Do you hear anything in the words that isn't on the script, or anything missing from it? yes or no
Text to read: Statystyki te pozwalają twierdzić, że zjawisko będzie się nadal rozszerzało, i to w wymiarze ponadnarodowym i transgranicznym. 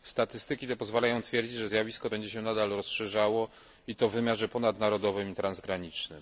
no